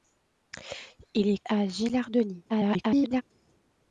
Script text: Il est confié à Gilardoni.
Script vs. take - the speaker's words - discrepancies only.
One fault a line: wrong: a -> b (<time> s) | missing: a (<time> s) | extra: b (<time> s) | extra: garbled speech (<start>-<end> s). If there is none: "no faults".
missing: confié (1.4 s)
extra: garbled speech (2.5-3.2 s)